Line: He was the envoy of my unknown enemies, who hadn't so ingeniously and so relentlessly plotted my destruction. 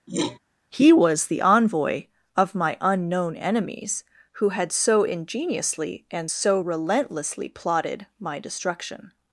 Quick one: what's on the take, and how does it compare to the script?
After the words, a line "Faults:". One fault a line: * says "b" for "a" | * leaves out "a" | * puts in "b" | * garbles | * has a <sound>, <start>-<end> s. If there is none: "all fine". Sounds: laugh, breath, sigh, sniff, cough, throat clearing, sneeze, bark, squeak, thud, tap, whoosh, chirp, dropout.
He was the envoy of my unknown enemies, who had so ingeniously and so relentlessly plotted my destruction.
Faults:
* has a throat clearing, 0.1-0.4 s
* says "had" for "hadn't"